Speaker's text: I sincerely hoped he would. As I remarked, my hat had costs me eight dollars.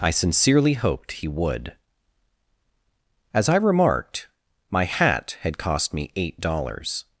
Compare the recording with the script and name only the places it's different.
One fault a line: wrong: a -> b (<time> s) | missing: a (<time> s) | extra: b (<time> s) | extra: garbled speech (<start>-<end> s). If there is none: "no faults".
wrong: costs -> cost (5.6 s)